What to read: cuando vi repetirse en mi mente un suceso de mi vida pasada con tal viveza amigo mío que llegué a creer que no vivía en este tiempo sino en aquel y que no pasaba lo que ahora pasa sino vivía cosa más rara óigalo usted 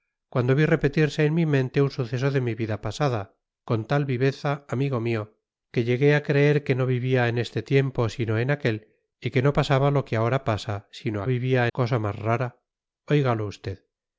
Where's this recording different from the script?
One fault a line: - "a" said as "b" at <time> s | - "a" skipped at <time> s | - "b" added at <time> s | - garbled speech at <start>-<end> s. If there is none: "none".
none